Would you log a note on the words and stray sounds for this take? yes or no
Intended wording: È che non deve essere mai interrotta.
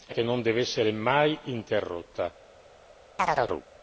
yes